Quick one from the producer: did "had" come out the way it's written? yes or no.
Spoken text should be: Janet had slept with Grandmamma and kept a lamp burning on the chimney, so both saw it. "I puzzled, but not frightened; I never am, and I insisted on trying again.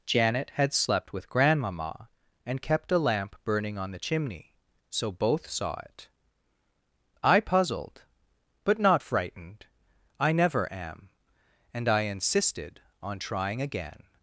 yes